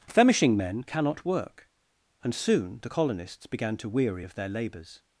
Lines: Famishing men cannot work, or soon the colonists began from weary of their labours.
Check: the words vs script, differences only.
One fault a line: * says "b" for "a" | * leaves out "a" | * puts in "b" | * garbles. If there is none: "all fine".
* says "and" for "or"
* says "to" for "from"